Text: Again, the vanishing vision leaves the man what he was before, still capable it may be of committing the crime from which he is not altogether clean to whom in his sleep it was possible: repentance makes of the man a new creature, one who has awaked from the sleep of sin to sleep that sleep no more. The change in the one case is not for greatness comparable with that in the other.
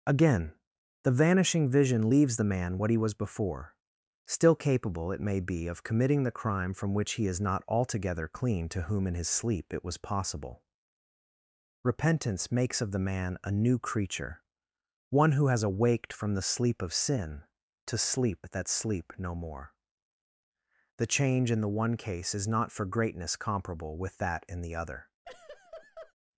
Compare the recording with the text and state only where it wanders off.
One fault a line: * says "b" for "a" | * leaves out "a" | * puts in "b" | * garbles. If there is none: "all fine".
all fine